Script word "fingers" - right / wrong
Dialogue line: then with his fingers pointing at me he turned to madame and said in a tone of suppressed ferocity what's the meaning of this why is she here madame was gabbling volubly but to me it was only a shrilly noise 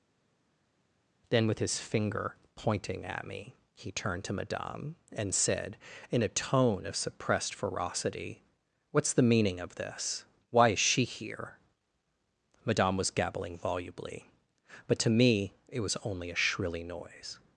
wrong